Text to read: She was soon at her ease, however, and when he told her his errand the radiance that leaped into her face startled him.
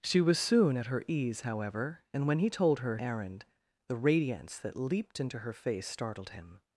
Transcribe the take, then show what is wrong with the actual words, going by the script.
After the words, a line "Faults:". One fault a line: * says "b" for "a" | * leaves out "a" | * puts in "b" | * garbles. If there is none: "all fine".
She was soon at her ease, however, and when he told her errand the radiance that leaped into her face startled him.
Faults:
* leaves out "his"